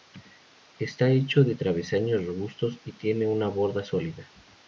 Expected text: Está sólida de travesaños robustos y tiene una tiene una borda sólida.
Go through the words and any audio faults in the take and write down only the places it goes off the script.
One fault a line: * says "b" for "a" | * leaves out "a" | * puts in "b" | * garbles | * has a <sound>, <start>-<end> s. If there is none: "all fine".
* says "hecho" for "sólida"
* leaves out "tiene una"